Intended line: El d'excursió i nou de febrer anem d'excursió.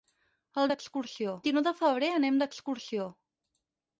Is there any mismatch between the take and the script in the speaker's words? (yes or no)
no